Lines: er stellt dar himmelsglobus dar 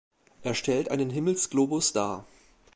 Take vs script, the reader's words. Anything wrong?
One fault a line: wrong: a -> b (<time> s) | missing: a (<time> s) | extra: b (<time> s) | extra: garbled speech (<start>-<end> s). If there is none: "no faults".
wrong: dar -> einen (0.9 s)